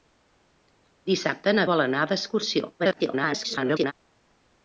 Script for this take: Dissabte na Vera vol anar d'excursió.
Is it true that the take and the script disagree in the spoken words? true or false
true